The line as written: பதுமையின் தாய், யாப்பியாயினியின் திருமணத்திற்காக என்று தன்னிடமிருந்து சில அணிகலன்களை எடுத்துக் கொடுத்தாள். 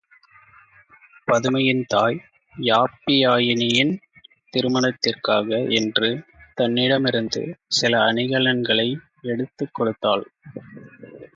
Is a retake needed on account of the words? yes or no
no